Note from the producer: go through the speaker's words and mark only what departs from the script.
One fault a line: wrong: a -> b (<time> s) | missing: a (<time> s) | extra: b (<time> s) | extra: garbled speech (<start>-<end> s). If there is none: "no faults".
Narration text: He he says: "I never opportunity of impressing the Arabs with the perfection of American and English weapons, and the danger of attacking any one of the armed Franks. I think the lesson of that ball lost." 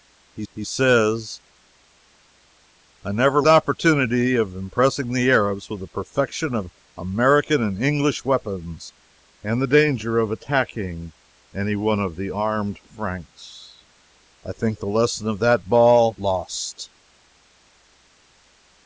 no faults